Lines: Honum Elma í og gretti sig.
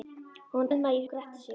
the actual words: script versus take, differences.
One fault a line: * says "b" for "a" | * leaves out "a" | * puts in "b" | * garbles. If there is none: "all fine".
all fine